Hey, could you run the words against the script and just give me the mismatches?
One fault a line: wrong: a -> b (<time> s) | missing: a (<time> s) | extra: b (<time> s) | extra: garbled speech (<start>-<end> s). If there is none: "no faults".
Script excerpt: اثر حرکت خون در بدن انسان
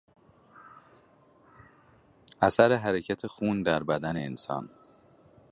no faults